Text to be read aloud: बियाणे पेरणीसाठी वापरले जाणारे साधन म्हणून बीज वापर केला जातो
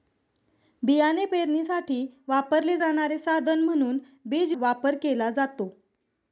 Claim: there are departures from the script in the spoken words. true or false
false